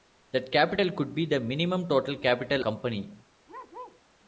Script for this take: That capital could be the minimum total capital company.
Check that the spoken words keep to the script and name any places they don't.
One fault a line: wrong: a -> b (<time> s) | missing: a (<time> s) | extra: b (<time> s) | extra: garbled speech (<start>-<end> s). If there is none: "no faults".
no faults